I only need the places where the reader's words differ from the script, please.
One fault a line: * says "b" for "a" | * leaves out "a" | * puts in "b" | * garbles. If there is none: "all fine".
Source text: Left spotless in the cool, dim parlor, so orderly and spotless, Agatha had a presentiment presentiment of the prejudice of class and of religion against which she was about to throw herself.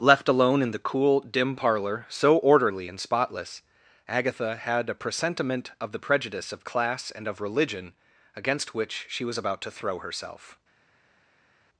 * says "alone" for "spotless"
* leaves out "presentiment"